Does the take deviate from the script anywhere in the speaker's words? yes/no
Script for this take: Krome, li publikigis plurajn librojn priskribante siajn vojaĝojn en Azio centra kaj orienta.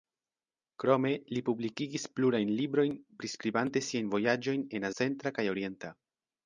yes